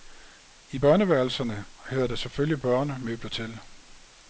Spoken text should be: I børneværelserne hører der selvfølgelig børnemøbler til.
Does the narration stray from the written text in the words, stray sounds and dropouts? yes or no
no